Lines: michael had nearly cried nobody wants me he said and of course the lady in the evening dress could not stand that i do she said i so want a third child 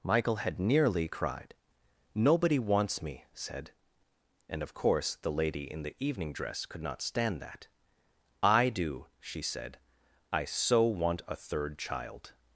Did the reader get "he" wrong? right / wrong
wrong